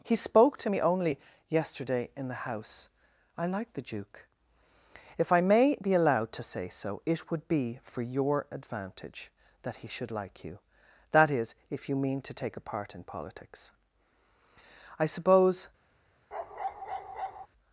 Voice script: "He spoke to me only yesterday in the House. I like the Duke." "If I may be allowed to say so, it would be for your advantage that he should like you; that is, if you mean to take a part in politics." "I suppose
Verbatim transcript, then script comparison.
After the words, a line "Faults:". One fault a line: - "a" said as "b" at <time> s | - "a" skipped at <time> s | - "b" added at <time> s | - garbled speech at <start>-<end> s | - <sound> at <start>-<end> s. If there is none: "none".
"He spoke to me only yesterday in the House. I like the Duke." "If I may be allowed to say so, it would be for your advantage that he should like you; that is, if you mean to take a part in politics." "I suppose
Faults:
- bark at 16.3-17.5 s